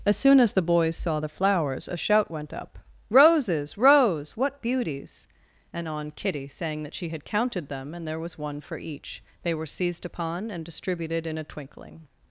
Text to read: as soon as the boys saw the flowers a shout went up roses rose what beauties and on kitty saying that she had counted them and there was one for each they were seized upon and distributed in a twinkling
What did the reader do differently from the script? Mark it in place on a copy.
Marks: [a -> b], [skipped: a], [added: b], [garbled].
as soon as the boys saw the flowers a shout went up roses rose what beauties and on kitty saying that she had counted them and there was one for each they were seized upon and distributed in a twinkling